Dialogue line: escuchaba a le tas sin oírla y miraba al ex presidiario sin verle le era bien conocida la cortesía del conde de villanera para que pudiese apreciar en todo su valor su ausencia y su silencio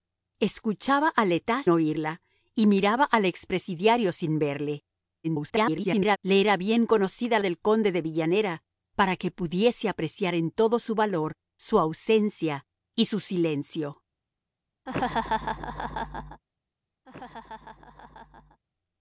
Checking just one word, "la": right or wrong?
wrong